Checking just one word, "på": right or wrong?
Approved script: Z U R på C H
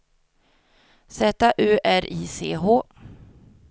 wrong